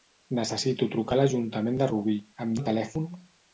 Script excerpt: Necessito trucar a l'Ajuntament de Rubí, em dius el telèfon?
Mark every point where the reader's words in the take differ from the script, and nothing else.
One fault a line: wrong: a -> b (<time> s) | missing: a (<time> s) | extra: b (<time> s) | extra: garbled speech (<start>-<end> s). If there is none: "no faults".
missing: dius (2.6 s)